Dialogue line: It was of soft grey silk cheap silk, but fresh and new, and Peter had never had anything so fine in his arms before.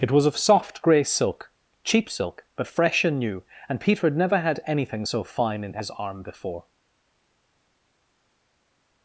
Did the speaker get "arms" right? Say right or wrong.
wrong